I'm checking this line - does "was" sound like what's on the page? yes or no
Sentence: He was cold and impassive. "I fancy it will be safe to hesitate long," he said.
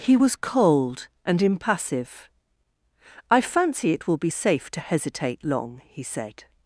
yes